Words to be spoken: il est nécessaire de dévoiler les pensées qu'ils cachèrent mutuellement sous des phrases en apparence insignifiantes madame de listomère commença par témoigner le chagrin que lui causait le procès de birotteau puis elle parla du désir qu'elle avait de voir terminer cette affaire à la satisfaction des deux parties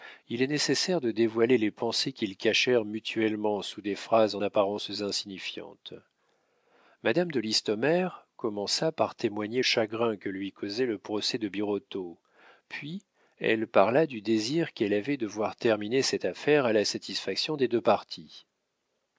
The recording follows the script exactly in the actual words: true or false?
false